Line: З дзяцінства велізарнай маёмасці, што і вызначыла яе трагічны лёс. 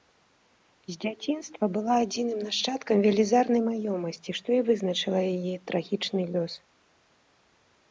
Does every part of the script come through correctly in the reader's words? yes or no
no